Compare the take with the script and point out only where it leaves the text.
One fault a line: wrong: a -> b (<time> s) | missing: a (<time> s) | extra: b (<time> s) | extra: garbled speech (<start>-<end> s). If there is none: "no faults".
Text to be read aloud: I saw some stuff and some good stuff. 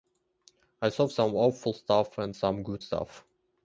extra: awful (1.4 s)